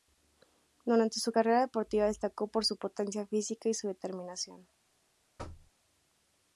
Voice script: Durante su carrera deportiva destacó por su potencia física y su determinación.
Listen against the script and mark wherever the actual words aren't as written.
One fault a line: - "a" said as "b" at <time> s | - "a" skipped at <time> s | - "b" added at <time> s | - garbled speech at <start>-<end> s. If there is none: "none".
none